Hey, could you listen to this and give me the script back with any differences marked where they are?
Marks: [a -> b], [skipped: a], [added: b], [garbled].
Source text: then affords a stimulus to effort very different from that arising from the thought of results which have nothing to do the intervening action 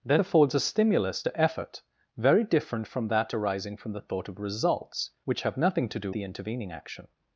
then affords a stimulus to effort very different from that arising from the thought of results which have nothing to do the intervening action